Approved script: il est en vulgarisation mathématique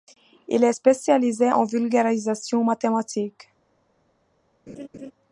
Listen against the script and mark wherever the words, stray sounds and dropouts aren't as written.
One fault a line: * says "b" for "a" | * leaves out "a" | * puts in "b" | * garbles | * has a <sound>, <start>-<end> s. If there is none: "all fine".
* puts in "spécialisé"
* has a laugh, 4.7-5.1 s